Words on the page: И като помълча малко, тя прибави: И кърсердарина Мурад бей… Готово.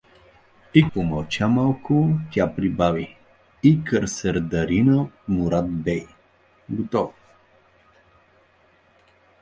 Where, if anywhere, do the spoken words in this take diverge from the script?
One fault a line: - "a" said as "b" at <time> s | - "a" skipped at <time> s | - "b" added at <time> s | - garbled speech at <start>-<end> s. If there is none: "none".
- "като" skipped at 0.9 s